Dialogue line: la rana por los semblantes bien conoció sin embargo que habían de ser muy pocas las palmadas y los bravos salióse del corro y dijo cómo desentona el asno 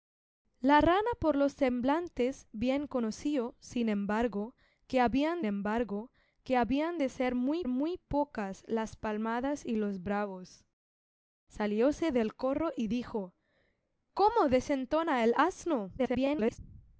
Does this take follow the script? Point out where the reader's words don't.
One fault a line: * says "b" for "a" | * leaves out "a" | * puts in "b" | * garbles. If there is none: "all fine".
* puts in "embargo que habían"
* puts in "muy"
* garbles